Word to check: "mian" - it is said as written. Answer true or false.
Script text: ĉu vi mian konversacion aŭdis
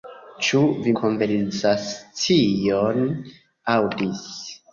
false